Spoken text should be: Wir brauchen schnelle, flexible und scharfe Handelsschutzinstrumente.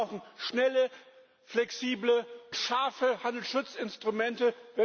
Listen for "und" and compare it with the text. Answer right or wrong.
wrong